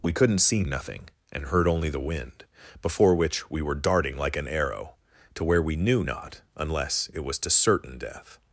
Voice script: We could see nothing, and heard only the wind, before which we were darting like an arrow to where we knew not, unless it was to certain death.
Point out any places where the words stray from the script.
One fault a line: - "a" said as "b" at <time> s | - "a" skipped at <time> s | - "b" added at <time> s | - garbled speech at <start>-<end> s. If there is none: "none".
- "could" said as "couldn't" at 0.1 s